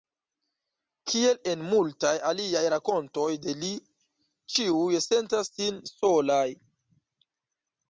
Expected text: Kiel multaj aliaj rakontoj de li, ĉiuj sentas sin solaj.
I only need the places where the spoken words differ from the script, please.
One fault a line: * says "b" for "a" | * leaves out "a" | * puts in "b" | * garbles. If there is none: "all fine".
* puts in "en"